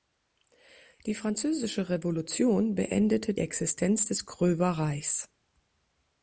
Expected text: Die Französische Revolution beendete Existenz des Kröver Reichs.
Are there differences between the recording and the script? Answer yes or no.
no